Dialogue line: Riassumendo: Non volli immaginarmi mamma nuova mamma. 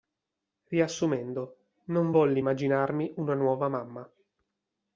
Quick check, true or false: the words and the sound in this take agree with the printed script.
false